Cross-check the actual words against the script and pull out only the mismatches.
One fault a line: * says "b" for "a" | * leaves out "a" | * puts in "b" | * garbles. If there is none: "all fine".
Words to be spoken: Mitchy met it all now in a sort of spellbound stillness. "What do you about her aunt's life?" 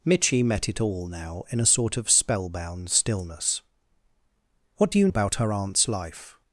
all fine